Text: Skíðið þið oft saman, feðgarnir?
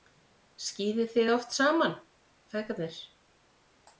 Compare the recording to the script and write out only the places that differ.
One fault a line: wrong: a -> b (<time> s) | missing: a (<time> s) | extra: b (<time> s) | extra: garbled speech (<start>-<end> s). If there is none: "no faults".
no faults